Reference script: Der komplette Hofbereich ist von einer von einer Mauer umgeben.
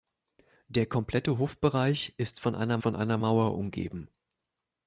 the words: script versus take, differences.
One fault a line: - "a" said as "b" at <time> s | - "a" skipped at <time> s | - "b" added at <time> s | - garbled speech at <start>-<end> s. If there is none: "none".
none